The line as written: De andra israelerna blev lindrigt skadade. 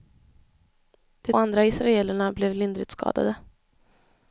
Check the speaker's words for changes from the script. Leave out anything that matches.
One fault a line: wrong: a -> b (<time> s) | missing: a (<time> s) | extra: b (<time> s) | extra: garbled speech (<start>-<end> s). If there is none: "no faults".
no faults